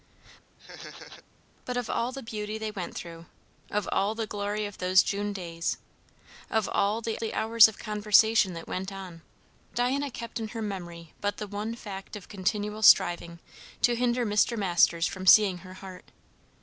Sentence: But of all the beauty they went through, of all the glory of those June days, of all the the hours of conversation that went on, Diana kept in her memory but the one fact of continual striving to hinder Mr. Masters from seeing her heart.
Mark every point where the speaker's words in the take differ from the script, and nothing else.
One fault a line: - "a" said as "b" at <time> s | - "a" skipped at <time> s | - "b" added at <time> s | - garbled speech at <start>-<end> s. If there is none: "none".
none